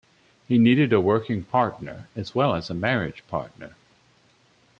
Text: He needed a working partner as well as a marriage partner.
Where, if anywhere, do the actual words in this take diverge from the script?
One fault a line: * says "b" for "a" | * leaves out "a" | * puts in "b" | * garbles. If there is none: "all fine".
all fine